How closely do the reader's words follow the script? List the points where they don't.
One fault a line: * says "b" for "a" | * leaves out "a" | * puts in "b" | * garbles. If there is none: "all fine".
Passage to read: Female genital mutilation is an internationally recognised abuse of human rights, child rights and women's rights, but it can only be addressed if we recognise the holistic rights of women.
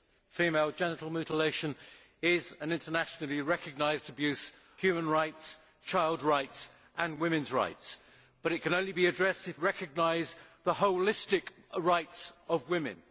* leaves out "of"
* leaves out "we"